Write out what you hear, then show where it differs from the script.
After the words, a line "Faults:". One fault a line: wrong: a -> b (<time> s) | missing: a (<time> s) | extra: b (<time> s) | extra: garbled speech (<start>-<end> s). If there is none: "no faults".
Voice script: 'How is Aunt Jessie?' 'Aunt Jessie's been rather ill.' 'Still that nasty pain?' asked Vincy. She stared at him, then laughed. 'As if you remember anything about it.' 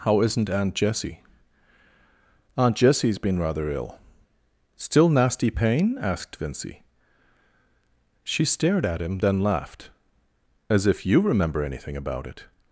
'How isn't Aunt Jessie?' 'Aunt Jessie's been rather ill.' 'Still nasty pain?' asked Vincy. She stared at him, then laughed. 'As if you remember anything about it.'
Faults:
wrong: is -> isn't (0.2 s)
missing: that (5.1 s)